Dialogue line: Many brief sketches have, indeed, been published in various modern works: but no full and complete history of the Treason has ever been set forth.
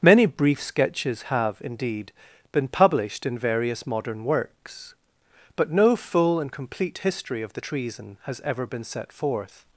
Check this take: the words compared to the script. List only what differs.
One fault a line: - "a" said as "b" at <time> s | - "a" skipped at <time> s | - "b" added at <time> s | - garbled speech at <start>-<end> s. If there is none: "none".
none